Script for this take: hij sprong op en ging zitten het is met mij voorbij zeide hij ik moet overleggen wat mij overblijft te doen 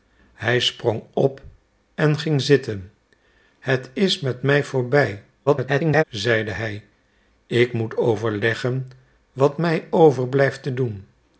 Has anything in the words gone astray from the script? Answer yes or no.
yes